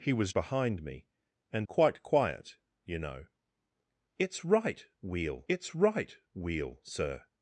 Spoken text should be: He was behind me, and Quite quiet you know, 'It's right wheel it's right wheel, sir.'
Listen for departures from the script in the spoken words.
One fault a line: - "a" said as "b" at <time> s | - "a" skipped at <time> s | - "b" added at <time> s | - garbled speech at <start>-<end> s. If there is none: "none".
none